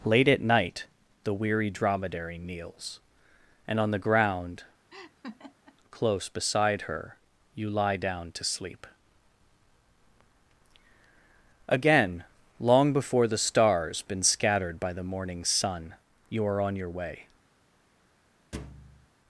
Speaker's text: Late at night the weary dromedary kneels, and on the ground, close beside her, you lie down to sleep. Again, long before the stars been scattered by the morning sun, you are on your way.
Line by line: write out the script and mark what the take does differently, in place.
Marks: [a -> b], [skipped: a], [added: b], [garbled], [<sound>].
Late at night the weary dromedary kneels, and on the ground, [laugh] close beside her, you lie down to sleep. Again, long before the stars been scattered by the morning sun, you are on your way. [thud]